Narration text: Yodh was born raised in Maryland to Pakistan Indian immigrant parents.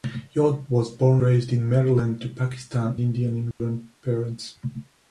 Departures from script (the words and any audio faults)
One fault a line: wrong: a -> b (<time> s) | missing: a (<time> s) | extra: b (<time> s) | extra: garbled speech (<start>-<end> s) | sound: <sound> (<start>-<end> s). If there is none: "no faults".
sound: dropout (3.5-3.6 s)